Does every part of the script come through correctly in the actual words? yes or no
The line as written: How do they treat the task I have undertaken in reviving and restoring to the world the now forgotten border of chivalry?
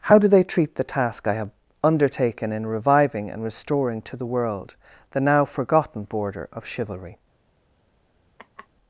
yes